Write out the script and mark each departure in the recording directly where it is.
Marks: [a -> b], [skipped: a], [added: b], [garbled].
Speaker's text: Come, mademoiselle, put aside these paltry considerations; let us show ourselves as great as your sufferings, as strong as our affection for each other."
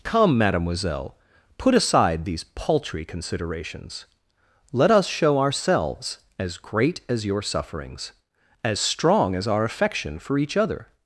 Come, mademoiselle, put aside these paltry considerations; let us show ourselves as great as your sufferings, as strong as our affection for each other."